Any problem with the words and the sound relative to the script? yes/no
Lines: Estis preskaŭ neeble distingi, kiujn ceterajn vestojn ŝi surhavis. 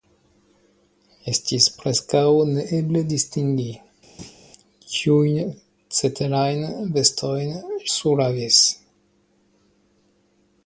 yes